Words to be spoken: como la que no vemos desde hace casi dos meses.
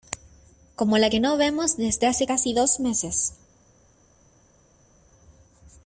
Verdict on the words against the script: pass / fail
pass